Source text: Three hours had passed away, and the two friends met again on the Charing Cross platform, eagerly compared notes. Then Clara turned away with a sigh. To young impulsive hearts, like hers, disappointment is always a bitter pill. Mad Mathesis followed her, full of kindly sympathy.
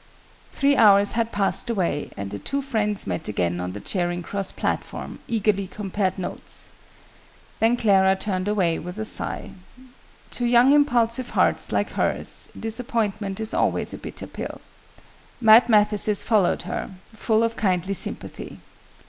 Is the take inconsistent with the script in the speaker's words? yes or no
no